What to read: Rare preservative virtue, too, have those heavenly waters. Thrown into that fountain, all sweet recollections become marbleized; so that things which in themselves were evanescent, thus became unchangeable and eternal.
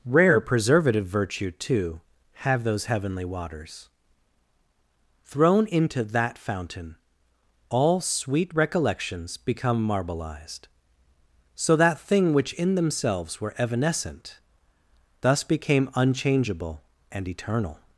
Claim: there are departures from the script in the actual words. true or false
true